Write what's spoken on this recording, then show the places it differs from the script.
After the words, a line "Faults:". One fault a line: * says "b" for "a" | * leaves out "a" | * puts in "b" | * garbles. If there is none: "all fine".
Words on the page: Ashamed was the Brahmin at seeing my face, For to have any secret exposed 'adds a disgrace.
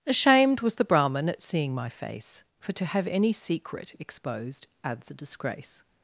Ashamed was the Brahmin at seeing my face, For to have any secret exposed 'adds a disgrace.
Faults:
all fine